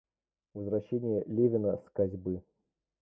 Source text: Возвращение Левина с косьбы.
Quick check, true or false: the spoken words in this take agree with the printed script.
true